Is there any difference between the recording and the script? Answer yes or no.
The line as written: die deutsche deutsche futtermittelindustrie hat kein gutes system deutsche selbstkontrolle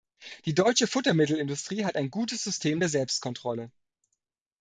yes